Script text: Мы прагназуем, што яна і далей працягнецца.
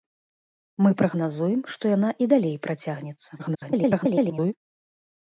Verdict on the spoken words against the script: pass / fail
fail